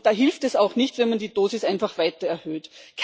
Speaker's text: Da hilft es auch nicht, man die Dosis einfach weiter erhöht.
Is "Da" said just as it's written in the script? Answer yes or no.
yes